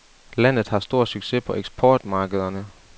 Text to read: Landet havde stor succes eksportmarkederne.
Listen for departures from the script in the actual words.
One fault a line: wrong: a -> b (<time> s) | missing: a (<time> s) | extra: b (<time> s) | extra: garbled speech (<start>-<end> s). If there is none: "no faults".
wrong: havde -> har (0.7 s)
extra: på (1.4 s)